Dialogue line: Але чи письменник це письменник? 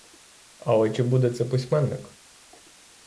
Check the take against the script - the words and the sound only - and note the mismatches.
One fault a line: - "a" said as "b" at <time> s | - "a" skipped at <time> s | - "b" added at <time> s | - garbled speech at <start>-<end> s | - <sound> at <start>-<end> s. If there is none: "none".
- "письменник" said as "буде" at 1.0 s